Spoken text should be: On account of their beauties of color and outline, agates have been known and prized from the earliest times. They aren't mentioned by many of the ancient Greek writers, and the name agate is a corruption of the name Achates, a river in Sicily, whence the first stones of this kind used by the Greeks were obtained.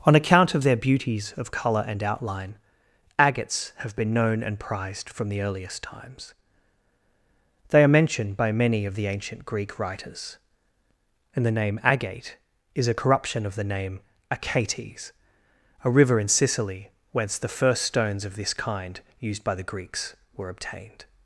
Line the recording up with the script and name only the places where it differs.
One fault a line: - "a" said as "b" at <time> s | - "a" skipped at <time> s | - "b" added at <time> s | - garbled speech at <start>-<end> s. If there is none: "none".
- "aren't" said as "are" at 7.8 s